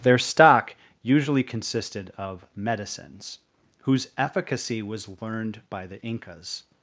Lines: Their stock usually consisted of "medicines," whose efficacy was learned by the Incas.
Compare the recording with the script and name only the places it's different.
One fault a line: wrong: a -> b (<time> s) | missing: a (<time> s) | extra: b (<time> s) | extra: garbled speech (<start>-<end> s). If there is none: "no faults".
no faults